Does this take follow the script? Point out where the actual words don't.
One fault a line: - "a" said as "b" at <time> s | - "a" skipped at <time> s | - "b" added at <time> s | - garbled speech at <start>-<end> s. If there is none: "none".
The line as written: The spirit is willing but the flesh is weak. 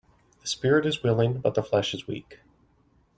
none